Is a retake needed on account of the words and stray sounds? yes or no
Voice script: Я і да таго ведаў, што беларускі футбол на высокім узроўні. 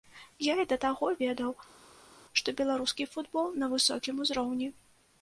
no